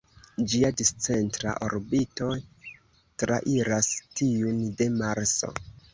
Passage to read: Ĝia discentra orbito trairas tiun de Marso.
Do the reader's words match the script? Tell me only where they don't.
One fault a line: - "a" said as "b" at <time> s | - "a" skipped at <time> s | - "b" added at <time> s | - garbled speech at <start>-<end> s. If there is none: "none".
none